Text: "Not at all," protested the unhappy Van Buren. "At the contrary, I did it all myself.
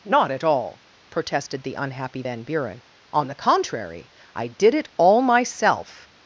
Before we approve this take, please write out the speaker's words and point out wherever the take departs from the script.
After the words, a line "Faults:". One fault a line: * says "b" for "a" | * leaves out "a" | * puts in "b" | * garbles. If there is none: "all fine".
"Not at all," protested the unhappy Van Buren. "On the contrary, I did it all myself.
Faults:
* says "On" for "At"